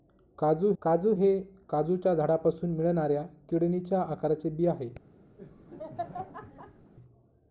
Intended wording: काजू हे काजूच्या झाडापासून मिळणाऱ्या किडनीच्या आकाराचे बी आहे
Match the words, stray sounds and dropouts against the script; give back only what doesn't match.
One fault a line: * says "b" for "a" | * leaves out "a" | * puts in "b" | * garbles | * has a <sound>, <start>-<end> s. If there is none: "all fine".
* puts in "काजू"
* has a laugh, 5.4-6.9 s